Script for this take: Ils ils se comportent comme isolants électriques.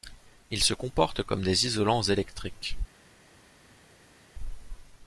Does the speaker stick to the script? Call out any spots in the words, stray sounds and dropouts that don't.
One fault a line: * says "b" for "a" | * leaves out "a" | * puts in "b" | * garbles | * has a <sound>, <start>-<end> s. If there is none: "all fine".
* leaves out "ils"
* puts in "des"